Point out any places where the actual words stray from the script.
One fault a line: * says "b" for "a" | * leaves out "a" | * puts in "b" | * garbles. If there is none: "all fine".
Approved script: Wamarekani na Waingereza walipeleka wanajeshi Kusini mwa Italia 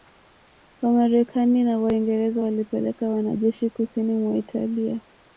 all fine